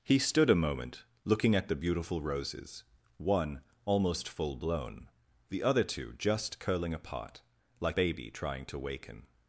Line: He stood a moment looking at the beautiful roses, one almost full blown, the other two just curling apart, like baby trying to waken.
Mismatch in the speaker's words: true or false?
false